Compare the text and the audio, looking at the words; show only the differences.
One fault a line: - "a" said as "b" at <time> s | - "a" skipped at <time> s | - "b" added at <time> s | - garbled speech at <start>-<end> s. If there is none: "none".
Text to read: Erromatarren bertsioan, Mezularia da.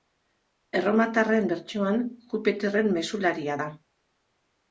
- "Jupiterren" added at 2.3 s